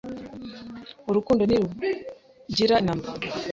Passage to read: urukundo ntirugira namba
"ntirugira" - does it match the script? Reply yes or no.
yes